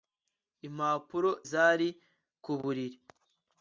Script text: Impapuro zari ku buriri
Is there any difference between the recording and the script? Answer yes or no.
no